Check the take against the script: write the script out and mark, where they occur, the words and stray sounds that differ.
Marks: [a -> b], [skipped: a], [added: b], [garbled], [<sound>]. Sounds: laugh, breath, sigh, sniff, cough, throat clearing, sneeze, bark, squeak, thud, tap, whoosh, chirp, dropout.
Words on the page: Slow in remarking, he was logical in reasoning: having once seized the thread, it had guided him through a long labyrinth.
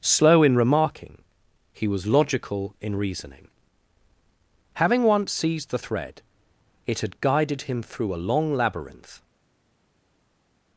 Slow in remarking, he was logical in reasoning: having once seized the thread, it had guided him through a long labyrinth.